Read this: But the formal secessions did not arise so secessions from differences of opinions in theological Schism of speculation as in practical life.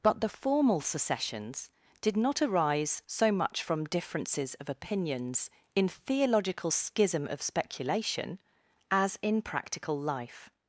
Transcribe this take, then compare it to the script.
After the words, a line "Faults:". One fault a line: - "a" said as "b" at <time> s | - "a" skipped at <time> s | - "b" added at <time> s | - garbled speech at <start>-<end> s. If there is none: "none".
But the formal secessions did not arise so much from differences of opinions in theological Schism of speculation as in practical life.
Faults:
- "secessions" said as "much" at 3.3 s